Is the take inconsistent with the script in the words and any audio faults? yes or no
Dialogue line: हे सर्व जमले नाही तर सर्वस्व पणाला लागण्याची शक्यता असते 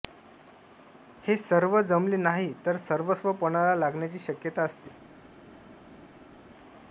no